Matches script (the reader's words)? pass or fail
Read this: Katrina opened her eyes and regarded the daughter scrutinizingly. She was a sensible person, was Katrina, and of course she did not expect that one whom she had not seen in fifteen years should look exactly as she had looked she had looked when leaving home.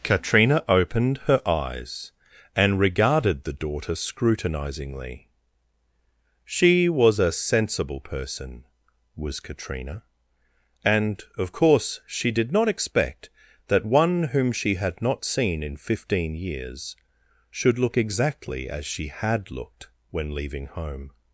fail